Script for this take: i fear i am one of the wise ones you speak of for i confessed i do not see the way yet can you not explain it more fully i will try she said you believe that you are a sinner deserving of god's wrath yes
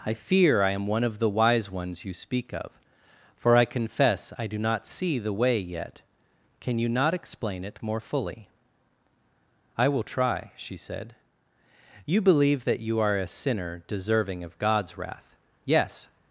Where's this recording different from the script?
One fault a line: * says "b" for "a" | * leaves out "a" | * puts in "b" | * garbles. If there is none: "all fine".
* says "confess" for "confessed"